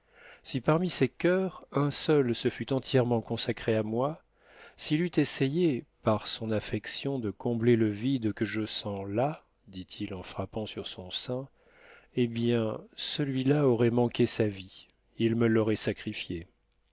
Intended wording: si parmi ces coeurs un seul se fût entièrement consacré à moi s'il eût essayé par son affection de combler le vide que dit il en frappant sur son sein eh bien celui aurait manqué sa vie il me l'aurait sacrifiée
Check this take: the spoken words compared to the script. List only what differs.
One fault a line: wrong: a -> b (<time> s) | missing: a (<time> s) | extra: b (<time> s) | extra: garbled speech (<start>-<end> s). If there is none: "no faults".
extra: je sens là (8.5 s)
extra: là (13.4 s)